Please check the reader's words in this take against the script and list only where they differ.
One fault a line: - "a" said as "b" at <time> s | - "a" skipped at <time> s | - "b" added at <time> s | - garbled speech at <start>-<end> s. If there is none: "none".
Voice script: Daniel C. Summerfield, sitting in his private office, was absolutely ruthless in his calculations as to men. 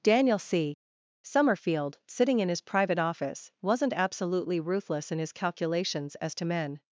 - "was" said as "wasn't" at 3.6 s